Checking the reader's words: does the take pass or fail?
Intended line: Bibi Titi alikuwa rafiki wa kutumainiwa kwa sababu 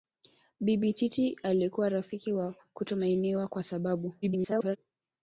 fail